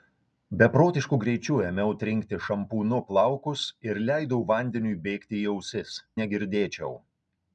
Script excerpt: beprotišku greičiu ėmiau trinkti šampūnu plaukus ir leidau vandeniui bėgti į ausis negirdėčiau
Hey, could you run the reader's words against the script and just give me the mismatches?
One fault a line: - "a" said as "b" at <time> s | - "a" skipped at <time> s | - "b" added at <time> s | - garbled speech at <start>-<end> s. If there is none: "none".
none